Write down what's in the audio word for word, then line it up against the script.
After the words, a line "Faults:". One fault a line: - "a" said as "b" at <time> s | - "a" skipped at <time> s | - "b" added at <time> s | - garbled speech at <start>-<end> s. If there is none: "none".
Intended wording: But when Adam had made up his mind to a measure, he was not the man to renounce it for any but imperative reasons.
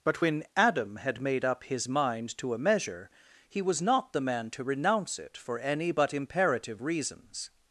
But when Adam had made up his mind to a measure, he was not the man to renounce it for any but imperative reasons.
Faults:
none